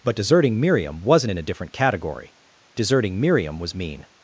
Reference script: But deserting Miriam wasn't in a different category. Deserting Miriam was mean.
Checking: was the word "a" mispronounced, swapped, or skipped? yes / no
no